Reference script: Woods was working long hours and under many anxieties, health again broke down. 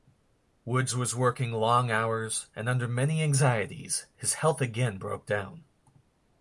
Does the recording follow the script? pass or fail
fail